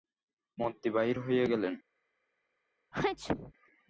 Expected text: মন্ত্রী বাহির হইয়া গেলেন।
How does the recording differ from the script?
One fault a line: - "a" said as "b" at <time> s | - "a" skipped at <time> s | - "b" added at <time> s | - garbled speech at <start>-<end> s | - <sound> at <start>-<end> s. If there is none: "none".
- sneeze at 2.9-3.5 s